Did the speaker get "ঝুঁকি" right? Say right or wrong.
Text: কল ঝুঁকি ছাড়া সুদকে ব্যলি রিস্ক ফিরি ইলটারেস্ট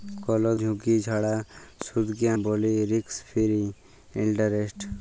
right